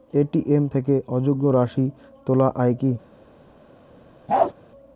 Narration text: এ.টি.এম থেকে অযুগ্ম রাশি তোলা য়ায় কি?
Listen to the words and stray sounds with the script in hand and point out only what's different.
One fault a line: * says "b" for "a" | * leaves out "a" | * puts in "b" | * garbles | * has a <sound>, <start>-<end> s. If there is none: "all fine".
* has a bark, 4.3-4.5 s